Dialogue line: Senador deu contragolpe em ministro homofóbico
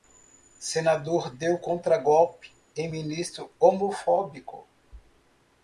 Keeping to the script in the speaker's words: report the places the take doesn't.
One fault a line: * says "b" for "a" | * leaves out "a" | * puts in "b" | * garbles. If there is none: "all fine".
all fine